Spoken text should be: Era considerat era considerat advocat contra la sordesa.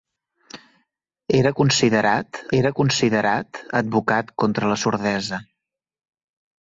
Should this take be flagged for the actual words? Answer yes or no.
no